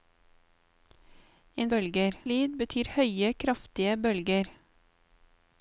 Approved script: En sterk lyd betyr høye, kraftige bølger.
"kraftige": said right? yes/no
yes